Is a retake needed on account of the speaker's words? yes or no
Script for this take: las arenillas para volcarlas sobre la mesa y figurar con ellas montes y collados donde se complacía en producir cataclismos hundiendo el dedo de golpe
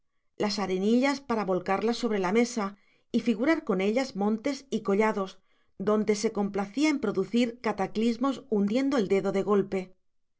no